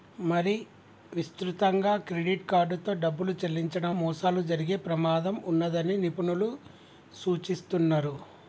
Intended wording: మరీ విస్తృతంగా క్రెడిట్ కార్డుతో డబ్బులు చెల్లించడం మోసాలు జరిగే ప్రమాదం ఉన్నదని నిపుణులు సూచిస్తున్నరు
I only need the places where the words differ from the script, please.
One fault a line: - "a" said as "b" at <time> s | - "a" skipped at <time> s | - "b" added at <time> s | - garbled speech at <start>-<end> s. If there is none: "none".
none